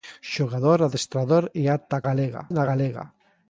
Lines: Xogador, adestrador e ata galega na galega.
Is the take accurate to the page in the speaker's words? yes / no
yes